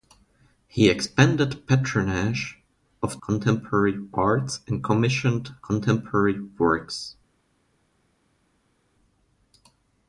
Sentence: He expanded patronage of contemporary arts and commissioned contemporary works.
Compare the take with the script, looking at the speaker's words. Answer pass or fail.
pass